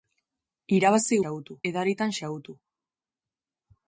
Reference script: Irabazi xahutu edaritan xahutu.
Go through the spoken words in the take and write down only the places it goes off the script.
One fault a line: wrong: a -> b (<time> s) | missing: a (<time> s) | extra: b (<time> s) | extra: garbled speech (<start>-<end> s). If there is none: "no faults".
no faults